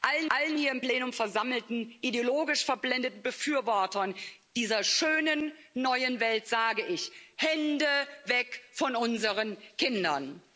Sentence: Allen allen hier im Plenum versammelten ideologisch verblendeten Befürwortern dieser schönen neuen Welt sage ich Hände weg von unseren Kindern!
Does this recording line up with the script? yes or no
yes